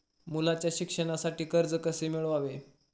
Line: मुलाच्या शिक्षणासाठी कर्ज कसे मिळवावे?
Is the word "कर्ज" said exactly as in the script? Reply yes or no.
yes